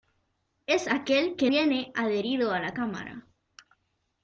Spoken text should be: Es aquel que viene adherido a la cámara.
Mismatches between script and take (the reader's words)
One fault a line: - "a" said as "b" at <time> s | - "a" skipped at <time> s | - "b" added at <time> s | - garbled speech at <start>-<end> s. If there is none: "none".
none